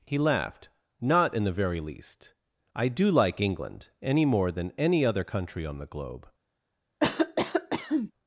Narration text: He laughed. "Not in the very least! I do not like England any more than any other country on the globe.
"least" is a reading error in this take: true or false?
false